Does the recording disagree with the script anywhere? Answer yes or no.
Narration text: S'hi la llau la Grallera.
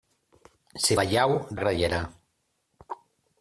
no